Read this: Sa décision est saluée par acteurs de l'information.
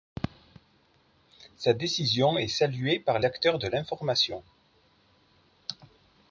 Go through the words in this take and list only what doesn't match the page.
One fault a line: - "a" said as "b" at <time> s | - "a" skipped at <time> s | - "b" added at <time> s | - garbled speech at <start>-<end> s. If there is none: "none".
none